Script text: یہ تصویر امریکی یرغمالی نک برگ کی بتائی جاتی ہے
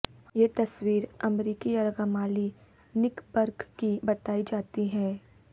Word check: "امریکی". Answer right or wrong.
right